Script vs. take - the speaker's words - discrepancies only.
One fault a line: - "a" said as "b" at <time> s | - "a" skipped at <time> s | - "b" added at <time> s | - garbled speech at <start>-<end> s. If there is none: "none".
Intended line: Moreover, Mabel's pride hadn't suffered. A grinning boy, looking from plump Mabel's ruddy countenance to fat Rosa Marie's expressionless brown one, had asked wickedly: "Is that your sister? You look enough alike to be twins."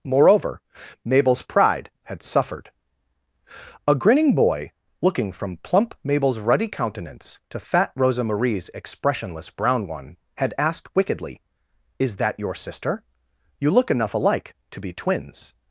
- "hadn't" said as "had" at 2.0 s